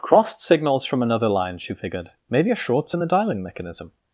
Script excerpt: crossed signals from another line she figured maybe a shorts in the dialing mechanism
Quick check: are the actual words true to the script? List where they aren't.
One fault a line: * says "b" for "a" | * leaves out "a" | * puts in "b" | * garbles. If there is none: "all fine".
all fine